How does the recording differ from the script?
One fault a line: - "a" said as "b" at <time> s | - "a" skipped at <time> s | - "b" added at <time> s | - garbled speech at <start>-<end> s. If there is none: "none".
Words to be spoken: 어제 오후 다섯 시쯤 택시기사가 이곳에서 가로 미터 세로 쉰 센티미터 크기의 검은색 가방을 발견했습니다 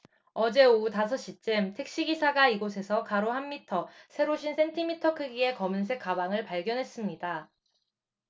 - "한" added at 3.3 s